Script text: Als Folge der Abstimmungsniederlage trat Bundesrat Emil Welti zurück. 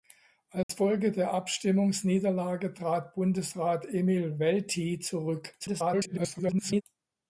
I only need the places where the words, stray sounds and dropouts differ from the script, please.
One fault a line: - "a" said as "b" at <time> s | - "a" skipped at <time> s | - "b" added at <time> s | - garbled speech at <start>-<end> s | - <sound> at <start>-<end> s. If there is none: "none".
- dropout at 0.6-0.7 s
- garbled speech at 5.6-6.8 s